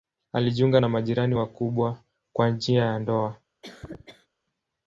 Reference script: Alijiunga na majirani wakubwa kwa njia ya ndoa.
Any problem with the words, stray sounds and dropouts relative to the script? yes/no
yes